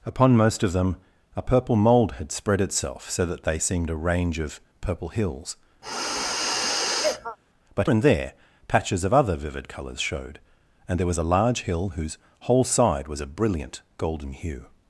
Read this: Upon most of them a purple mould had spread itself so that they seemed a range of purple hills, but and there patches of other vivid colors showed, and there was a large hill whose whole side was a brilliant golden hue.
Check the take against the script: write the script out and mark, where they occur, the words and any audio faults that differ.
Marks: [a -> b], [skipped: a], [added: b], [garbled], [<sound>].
Upon most of them a purple mould had spread itself so that they seemed a range of purple hills, [sniff] but and there patches of other vivid colors showed, and there was a large hill whose whole side was a brilliant golden hue.